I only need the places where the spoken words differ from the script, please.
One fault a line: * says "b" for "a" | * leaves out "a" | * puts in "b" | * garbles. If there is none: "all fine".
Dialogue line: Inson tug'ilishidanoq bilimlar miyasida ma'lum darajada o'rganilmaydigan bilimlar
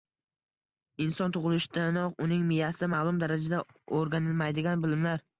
* says "uning" for "bilimlar"